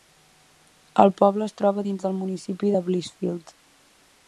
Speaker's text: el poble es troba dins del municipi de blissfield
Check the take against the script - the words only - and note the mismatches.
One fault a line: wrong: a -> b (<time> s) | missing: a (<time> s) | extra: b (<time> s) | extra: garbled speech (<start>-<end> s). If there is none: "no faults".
no faults